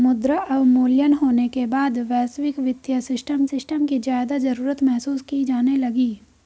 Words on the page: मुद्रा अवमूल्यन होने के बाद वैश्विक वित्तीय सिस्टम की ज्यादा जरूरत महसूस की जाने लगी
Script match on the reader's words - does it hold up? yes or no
no